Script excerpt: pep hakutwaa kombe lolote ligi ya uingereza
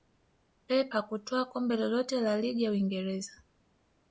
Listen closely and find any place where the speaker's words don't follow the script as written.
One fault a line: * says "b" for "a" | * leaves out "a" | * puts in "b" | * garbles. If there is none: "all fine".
* puts in "la"